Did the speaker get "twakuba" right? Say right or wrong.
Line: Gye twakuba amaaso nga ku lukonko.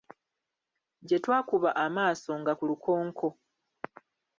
right